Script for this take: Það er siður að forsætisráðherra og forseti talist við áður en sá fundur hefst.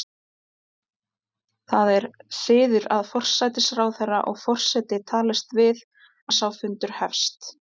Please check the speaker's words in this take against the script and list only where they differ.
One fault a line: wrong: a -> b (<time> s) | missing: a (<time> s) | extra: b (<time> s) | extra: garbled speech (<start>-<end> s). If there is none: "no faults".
missing: áður (5.9 s)